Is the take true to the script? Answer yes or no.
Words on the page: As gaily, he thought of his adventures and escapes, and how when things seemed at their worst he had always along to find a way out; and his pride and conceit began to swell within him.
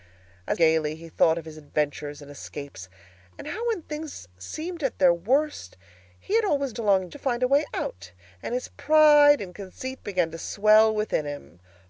yes